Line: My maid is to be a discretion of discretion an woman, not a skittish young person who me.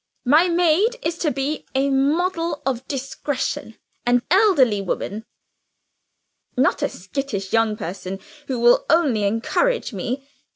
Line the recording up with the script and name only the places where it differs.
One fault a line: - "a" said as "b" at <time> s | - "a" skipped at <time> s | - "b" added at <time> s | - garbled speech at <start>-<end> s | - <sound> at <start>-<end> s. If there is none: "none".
- "discretion" said as "model" at 1.9 s
- "elderly" added at 4.3 s
- "will only encourage" added at 8.6 s